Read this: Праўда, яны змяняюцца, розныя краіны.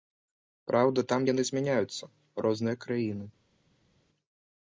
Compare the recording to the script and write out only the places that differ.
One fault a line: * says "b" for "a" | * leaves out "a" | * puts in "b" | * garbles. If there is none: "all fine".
* puts in "там"